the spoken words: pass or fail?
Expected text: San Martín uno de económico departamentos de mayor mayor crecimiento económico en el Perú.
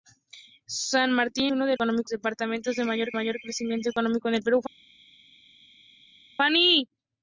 pass